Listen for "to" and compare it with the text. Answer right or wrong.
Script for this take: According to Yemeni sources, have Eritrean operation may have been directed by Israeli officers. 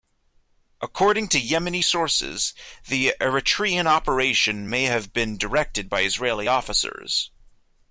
right